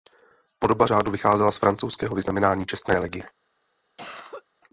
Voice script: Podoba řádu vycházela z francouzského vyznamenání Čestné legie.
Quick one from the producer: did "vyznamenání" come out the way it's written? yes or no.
yes